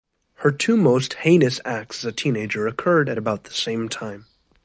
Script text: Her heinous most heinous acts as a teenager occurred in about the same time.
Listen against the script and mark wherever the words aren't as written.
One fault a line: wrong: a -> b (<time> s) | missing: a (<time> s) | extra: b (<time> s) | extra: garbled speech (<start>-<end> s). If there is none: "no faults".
wrong: heinous -> two (0.5 s)
wrong: in -> at (3.1 s)